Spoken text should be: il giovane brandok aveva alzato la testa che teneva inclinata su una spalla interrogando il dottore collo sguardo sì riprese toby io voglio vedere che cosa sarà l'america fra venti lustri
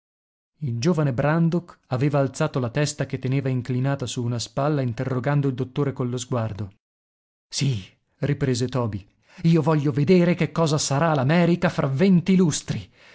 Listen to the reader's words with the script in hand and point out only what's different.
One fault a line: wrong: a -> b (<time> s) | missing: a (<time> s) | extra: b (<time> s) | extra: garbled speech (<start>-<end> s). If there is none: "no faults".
no faults